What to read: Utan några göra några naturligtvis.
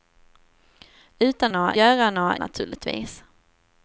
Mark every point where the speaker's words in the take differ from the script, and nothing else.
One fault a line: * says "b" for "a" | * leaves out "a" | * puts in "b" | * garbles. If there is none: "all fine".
all fine